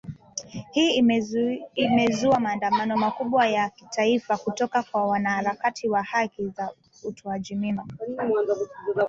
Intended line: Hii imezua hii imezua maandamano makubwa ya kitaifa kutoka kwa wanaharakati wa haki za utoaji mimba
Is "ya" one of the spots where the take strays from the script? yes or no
no